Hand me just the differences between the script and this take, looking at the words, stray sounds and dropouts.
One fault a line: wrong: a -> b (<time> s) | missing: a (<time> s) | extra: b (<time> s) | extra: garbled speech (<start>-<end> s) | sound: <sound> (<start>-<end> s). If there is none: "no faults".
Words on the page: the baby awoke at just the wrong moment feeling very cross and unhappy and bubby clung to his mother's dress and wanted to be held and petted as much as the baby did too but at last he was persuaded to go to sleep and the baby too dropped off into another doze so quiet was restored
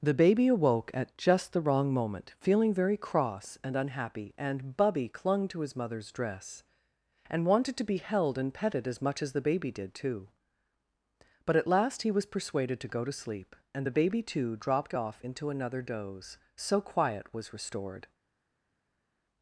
no faults